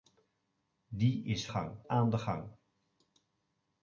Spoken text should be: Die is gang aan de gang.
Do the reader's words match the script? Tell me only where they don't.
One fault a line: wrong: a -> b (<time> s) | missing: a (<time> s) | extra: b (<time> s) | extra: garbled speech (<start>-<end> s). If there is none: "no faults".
no faults